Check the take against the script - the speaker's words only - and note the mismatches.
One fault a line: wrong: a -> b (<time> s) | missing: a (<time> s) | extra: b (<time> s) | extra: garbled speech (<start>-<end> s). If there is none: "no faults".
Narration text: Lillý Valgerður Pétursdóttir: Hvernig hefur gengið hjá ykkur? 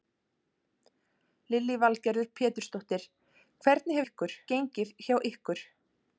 wrong: hefur -> ykkur (4.1 s)